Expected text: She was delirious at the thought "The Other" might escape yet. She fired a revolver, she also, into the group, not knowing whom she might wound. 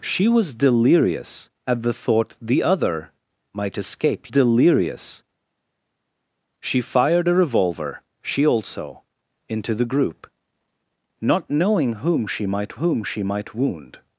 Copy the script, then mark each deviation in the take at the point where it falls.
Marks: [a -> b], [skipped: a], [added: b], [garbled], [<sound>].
She was delirious at the thought "The Other" might escape [yet. -> delirious] She fired a revolver, she also, into the group, not knowing whom she might [added: whom she might] wound.